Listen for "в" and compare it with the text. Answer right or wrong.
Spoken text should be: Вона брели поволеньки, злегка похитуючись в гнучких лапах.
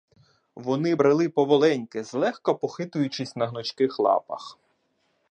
wrong